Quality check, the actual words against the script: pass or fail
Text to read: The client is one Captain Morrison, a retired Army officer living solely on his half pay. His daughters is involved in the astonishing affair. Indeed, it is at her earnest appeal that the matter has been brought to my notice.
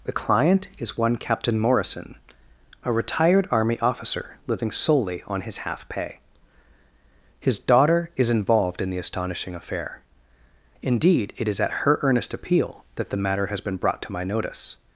fail